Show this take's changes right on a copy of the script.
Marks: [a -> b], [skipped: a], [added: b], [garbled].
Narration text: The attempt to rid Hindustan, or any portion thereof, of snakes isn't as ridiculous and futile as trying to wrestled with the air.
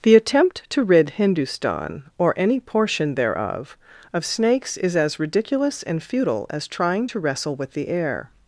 The attempt to rid Hindustan, or any portion thereof, of snakes [isn't -> is] as ridiculous and futile as trying to [wrestled -> wrestle] with the air.